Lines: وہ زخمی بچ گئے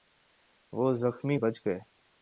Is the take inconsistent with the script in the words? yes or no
no